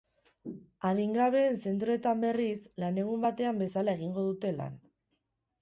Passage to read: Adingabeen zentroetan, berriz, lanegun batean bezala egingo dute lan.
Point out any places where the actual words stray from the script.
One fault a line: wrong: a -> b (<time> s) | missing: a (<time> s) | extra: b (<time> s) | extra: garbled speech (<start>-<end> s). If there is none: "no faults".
no faults